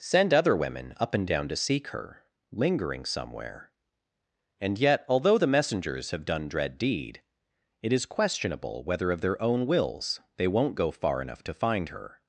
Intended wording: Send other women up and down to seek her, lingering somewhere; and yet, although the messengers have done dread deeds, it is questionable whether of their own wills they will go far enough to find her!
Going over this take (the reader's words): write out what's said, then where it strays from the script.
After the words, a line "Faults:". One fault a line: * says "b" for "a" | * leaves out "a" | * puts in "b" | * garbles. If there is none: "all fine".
Send other women up and down to seek her, lingering somewhere; and yet, although the messengers have done dread deed, it is questionable whether of their own wills they won't go far enough to find her!
Faults:
* says "deed" for "deeds"
* says "won't" for "will"